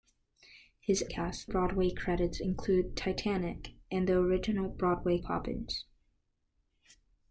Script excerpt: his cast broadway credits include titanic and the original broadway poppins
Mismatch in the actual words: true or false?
false